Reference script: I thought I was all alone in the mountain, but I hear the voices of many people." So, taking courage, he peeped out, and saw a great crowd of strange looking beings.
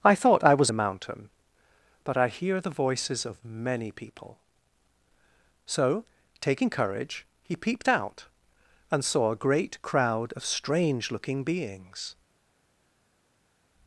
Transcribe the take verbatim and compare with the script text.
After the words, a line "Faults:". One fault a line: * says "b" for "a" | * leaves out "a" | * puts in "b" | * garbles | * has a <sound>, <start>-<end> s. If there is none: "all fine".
I thought I was the mountain, but I hear the voices of many people." So, taking courage, he peeped out, and saw a great crowd of strange looking beings.
Faults:
* leaves out "all alone in"